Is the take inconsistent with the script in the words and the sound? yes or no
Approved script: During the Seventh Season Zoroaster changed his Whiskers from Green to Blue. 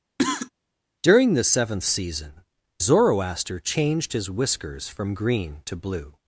yes